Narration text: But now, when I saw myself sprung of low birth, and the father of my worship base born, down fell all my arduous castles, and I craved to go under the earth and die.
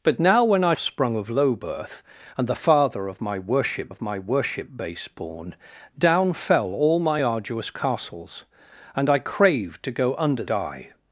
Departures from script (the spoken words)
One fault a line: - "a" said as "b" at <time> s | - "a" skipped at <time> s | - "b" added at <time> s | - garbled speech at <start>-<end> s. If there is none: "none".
- "saw myself" skipped at 0.7 s
- "of my worship" added at 3.9 s
- "the earth and" skipped at 10.4 s